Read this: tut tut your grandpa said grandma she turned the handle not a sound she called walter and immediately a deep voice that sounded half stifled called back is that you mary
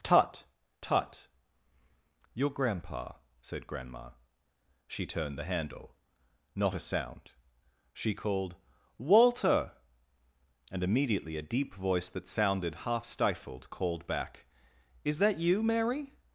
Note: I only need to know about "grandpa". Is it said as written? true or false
true